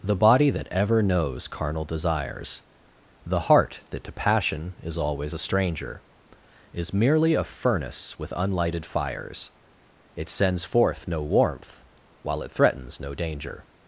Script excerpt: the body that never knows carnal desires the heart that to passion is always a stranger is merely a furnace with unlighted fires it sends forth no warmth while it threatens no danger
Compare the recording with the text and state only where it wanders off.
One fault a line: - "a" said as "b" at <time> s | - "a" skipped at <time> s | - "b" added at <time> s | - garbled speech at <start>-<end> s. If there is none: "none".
- "never" said as "ever" at 0.7 s